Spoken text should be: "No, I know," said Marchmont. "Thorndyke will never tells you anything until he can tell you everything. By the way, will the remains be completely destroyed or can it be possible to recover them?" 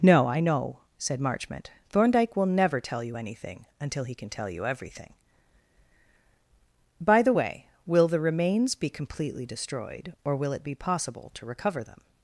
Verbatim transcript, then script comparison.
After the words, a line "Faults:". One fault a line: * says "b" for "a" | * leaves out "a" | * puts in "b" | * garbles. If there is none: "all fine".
"No, I know," said Marchmont. "Thorndyke will never tell you anything until he can tell you everything. By the way, will the remains be completely destroyed or will it be possible to recover them?"
Faults:
* says "tell" for "tells"
* says "will" for "can"